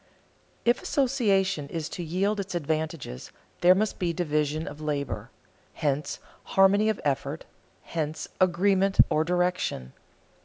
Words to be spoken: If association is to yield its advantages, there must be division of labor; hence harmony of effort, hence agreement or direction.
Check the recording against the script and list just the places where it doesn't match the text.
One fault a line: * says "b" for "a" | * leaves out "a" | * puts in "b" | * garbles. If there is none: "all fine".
all fine